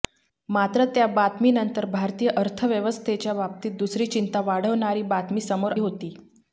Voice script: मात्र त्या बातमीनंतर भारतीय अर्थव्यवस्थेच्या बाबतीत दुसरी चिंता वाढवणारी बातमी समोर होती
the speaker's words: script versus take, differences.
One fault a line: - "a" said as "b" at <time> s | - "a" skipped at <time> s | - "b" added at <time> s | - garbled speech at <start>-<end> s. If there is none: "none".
none